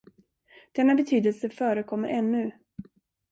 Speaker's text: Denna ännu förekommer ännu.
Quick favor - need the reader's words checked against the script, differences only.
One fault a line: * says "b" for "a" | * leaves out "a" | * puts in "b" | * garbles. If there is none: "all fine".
* says "betydelse" for "ännu"